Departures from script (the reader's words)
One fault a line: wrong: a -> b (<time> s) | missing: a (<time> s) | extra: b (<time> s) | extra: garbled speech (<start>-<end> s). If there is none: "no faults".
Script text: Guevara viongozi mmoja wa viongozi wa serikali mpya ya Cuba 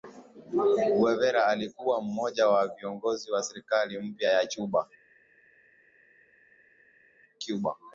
wrong: viongozi -> alikuwa (1.5 s)